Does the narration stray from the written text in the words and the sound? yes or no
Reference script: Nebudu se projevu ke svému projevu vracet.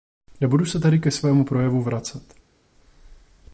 yes